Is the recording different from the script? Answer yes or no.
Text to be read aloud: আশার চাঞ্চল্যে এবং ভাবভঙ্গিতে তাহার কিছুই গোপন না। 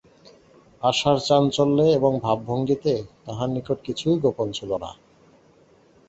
yes